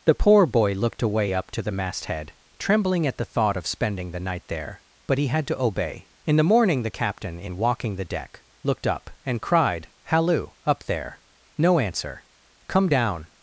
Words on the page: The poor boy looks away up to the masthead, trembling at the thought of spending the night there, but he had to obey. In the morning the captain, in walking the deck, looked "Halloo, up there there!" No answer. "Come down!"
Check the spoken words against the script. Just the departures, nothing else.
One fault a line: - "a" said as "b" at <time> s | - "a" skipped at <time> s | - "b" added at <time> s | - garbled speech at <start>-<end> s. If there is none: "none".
- "looks" said as "looked" at 0.7 s
- "up and cried" added at 8.9 s
- "there" skipped at 11.2 s